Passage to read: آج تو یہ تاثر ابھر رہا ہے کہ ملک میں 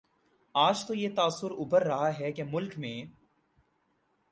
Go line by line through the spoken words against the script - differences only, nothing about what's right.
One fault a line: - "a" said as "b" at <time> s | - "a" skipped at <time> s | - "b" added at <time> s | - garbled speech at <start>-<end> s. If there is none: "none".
none